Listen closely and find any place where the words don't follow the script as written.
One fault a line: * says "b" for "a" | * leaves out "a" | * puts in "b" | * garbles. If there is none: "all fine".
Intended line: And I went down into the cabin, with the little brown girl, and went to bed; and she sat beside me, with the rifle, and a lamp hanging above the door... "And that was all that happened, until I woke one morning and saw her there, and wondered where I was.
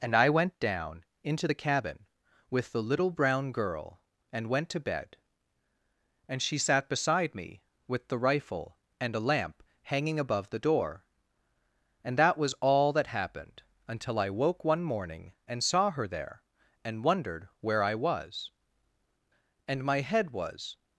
* puts in "And my head was"